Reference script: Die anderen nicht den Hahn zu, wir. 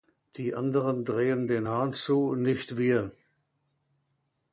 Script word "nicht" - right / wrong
wrong